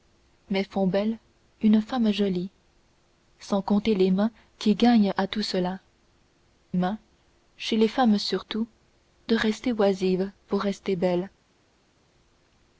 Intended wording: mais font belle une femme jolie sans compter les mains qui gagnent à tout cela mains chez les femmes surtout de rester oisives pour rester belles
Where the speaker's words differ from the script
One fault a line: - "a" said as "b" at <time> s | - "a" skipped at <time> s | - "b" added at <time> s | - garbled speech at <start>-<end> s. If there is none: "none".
none